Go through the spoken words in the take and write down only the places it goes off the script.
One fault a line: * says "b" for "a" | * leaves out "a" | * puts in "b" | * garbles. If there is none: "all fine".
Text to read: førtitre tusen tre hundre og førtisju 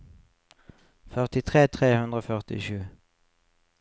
* leaves out "tusen"